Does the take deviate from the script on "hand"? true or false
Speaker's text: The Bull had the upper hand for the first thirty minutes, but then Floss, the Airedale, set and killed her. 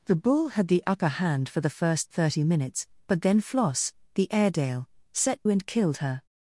false